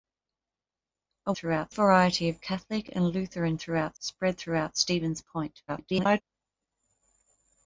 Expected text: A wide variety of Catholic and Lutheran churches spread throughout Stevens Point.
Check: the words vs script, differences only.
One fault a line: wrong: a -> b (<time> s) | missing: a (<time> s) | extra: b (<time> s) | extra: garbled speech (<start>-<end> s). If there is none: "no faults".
wrong: wide -> throughout (1.3 s)
wrong: churches -> throughout (3.6 s)
extra: garbled speech (5.7-6.2 s)